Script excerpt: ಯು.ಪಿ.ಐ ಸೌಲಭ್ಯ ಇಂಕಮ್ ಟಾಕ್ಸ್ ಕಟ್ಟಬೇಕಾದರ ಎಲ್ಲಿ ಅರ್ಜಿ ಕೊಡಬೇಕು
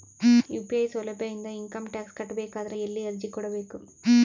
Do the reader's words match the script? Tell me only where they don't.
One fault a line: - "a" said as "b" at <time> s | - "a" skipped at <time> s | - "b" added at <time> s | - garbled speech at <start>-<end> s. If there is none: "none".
- "ಇಂದ" added at 1.3 s